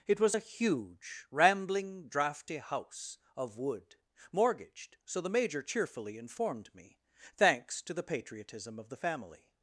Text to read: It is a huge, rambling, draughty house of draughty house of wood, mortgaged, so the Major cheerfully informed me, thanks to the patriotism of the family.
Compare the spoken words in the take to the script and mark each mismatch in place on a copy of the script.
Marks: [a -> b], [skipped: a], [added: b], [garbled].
It [is -> was] a huge, rambling, draughty house of [skipped: draughty house of] wood, mortgaged, so the Major cheerfully informed me, thanks to the patriotism of the family.